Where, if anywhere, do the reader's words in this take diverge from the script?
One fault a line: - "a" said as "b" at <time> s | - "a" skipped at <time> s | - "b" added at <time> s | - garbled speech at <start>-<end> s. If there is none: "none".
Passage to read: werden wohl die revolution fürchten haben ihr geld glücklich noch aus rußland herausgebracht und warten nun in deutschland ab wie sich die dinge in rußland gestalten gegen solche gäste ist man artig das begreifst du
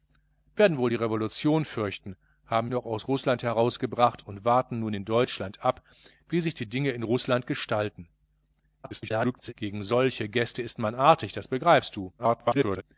- "ihr geld glücklich" skipped at 2.7 s
- garbled speech at 8.8-9.5 s
- garbled speech at 12.2-12.8 s